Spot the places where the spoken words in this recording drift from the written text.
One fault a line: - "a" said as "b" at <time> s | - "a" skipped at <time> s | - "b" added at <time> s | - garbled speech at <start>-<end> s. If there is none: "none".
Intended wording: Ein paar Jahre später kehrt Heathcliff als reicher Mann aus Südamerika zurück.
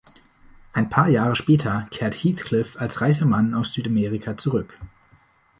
none